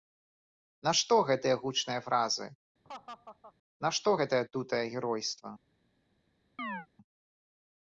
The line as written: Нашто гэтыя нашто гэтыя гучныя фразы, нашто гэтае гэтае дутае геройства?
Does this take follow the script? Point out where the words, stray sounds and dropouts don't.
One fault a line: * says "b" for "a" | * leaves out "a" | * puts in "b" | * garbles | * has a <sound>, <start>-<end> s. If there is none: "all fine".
* leaves out "нашто гэтыя"
* has a laugh, 2.8-3.5 s
* leaves out "гэтае"
* has a chirp, 6.6-6.9 s